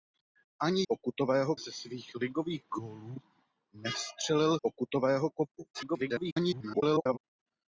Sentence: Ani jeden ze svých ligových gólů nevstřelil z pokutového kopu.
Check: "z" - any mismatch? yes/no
yes